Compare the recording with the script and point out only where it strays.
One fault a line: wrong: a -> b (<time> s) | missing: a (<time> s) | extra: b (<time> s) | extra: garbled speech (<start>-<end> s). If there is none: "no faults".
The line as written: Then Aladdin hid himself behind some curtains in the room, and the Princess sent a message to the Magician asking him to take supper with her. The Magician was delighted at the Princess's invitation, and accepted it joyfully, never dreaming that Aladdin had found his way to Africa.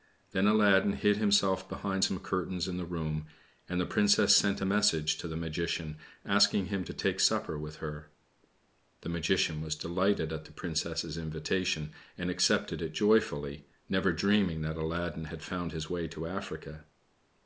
no faults